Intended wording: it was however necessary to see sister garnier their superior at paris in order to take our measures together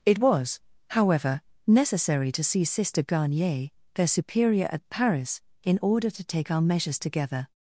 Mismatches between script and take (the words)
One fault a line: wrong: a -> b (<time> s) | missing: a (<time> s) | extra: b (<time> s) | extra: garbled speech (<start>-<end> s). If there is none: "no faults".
no faults